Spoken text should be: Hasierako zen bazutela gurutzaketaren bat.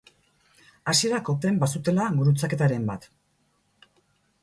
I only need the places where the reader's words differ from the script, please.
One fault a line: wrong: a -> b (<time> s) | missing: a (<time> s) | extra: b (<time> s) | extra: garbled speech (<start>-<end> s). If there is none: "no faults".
no faults